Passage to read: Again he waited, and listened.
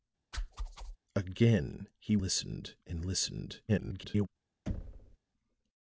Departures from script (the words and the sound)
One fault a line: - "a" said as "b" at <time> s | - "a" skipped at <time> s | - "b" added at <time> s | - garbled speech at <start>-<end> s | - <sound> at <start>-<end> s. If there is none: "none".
- whoosh at 0.3-1.0 s
- "waited" said as "listened" at 2.2 s
- garbled speech at 3.7-4.3 s
- thud at 4.7-5.2 s